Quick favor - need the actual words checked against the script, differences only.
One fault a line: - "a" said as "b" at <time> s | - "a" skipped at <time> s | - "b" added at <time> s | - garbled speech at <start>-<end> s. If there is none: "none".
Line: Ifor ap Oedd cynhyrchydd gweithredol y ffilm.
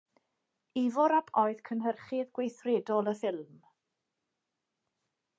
none